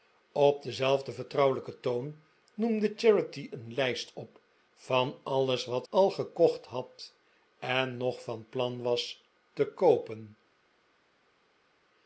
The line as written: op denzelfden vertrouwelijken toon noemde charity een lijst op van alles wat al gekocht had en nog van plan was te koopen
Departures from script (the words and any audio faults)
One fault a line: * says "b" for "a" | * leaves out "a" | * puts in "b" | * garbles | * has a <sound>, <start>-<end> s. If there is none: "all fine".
all fine